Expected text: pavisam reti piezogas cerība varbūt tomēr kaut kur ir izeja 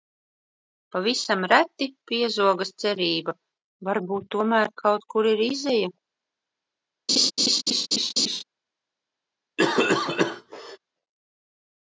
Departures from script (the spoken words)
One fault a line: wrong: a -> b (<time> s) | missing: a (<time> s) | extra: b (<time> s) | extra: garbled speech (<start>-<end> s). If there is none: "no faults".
no faults